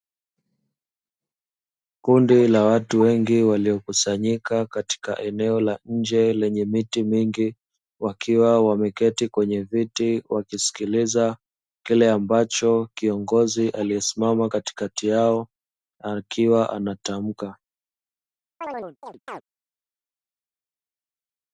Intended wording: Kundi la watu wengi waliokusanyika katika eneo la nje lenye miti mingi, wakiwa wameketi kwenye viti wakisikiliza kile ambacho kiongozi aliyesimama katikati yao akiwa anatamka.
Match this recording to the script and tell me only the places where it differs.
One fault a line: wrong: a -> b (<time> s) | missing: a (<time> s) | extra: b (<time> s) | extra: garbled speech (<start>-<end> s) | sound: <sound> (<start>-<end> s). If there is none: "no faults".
sound: chirp (18.6-19.4 s)